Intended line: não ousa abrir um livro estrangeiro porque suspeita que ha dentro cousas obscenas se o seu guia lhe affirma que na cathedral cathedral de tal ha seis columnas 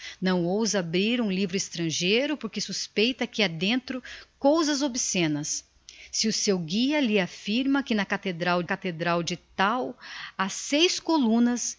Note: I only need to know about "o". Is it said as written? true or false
true